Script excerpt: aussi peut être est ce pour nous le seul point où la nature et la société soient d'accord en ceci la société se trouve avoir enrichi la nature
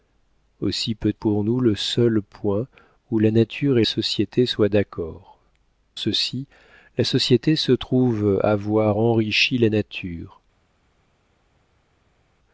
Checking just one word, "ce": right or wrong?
wrong